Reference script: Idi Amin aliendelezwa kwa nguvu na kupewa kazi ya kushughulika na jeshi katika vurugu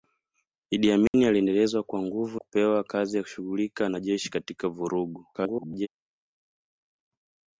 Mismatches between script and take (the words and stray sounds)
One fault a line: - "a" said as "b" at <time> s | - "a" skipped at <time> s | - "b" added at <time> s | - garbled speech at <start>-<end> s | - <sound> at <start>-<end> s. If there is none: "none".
- dropout at 1.1-1.1 s
- "na" skipped at 2.4 s
- garbled speech at 5.3-5.9 s